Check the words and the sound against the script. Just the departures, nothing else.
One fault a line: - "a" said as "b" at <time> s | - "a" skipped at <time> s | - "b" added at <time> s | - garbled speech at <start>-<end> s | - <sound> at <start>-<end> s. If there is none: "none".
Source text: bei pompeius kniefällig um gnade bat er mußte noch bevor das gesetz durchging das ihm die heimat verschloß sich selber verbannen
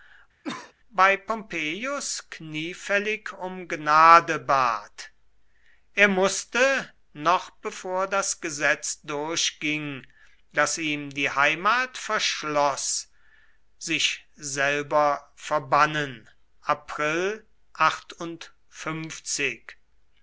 - cough at 0.4-0.7 s